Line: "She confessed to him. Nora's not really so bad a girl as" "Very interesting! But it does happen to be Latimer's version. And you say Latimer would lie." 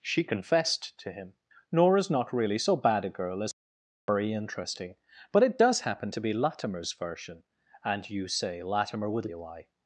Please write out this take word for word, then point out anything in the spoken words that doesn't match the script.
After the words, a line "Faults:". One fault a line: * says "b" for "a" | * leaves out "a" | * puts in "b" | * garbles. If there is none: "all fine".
"She confessed to him. Nora's not really so bad a girl as" "Very interesting! But it does happen to be Latimer's version. And you say Latimer would lie."
Faults:
all fine